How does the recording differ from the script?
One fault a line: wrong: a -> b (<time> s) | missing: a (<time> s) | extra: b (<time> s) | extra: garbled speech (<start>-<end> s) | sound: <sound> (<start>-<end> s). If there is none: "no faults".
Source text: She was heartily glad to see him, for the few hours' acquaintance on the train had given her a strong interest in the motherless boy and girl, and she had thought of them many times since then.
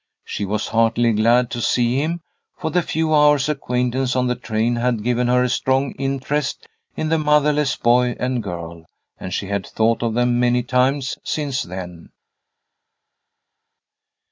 no faults